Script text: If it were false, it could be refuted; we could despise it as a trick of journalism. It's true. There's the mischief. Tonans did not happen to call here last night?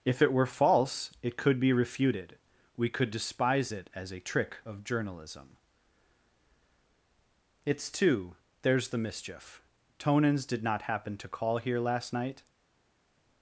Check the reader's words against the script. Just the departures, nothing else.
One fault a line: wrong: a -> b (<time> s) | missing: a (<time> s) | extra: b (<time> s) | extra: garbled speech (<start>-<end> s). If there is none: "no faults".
wrong: true -> two (7.9 s)